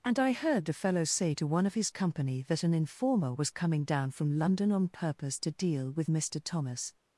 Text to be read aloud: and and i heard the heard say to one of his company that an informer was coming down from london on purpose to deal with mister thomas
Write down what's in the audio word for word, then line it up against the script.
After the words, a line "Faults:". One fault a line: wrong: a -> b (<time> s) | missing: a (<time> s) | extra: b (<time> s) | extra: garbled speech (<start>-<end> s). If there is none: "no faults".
and i heard the fellow say to one of his company that an informer was coming down from london on purpose to deal with mister thomas
Faults:
missing: and (0.2 s)
wrong: heard -> fellow (0.7 s)